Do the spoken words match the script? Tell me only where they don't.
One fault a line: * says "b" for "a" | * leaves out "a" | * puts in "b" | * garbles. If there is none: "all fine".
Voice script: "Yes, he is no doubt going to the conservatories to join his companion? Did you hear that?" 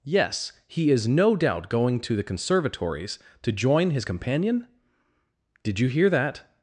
all fine